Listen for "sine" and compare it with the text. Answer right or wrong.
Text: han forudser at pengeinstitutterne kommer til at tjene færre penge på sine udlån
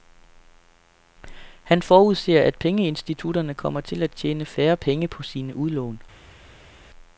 right